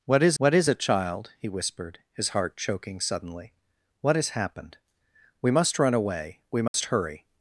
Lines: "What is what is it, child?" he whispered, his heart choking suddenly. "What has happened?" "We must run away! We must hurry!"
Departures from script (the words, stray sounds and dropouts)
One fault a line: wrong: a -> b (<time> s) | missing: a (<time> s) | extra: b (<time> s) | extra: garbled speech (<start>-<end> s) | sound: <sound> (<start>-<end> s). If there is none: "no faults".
sound: dropout (6.7-6.7 s)